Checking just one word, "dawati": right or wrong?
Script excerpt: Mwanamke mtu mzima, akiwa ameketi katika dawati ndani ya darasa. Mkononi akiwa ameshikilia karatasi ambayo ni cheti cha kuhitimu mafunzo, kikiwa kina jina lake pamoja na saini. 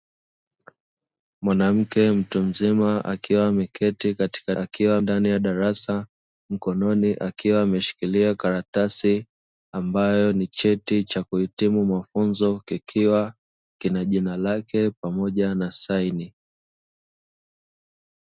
wrong